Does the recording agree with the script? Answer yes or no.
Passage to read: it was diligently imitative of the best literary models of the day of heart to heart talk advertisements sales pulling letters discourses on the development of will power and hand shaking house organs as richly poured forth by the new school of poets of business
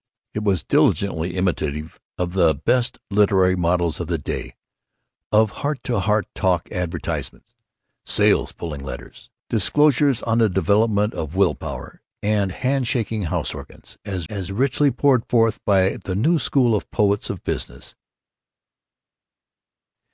no